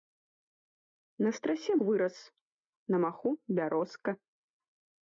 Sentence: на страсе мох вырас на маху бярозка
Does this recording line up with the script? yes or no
no